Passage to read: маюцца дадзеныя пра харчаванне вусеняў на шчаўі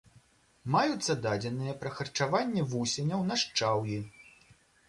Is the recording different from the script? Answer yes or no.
no